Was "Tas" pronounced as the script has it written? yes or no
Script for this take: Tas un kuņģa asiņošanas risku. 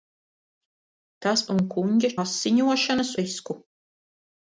yes